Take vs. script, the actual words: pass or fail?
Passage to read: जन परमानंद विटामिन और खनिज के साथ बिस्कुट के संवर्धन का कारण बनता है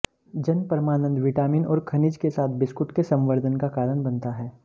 pass